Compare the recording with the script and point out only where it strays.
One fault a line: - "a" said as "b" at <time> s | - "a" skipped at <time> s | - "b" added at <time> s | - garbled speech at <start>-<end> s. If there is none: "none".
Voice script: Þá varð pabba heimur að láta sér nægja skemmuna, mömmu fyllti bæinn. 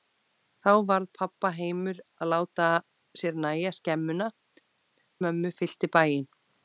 none